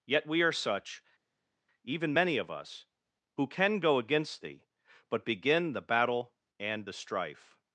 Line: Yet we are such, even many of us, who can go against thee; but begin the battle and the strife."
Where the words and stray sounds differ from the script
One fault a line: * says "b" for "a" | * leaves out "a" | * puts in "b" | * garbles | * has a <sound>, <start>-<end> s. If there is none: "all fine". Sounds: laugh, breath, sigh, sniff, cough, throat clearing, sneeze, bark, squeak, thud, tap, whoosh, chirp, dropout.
all fine